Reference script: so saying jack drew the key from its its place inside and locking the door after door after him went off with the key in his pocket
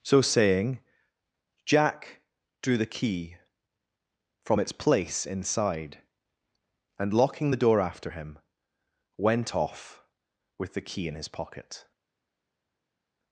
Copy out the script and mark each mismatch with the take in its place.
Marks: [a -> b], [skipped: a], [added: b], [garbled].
so saying jack drew the key from its [skipped: its] place inside and locking the door after [skipped: door after] him went off with the key in his pocket